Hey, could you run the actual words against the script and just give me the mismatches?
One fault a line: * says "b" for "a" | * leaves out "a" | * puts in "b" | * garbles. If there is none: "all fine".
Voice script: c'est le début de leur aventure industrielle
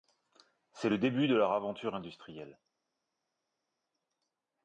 all fine